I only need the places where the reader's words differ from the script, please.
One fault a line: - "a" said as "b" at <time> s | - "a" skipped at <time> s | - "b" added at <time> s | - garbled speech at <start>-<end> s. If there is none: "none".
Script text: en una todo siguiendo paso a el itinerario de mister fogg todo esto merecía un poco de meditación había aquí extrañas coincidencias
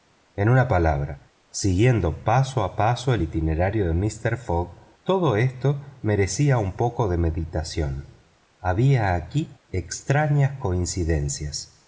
- "todo" said as "palabra" at 0.7 s
- "paso" added at 2.8 s